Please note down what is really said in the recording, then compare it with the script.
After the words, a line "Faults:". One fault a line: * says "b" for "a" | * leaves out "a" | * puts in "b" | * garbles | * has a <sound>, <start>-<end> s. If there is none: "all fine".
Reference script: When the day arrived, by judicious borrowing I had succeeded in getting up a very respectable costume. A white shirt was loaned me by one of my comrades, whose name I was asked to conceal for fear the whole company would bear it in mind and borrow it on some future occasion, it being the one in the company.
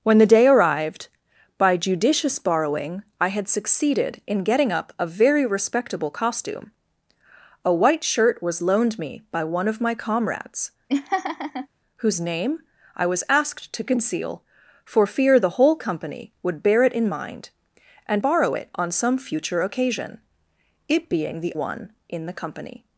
When the day arrived, by judicious borrowing I had succeeded in getting up a very respectable costume. A white shirt was loaned me by one of my comrades, whose name I was asked to conceal for fear the whole company would bear it in mind and borrow it on some future occasion, it being the one in the company.
Faults:
* has a laugh, 10.9-11.7 s